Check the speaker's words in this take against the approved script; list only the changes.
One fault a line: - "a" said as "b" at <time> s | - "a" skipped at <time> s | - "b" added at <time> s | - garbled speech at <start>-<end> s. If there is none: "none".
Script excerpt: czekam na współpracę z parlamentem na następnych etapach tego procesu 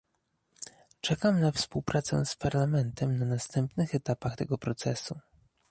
none